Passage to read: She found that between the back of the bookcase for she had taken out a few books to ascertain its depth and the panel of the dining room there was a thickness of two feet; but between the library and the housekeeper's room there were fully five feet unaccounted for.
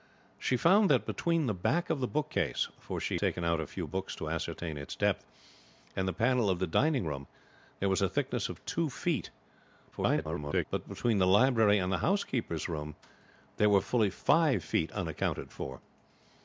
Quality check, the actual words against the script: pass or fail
fail